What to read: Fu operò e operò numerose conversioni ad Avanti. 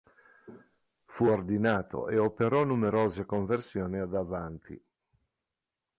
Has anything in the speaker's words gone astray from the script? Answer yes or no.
yes